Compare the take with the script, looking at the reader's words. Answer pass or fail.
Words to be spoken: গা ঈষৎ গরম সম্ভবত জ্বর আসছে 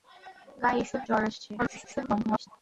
fail